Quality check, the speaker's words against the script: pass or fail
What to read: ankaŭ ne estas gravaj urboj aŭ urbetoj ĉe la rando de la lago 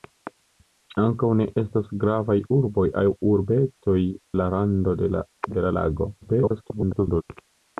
fail